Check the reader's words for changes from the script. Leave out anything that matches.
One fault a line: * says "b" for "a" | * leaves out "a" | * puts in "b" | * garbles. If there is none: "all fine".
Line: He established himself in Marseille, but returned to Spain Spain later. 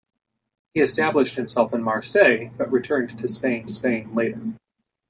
all fine